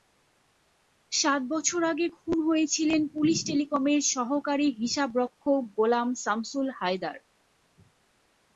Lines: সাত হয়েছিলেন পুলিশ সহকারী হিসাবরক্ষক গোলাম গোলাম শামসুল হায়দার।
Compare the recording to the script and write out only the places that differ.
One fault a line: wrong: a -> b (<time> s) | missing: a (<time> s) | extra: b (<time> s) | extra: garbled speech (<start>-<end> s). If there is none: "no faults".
extra: বছর আগে খুন (1.5 s)
extra: টেলিকমের (3.5 s)
missing: গোলাম (6.1 s)